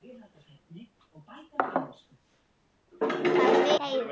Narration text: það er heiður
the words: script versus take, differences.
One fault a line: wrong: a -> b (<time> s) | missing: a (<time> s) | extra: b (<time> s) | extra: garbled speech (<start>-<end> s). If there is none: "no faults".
no faults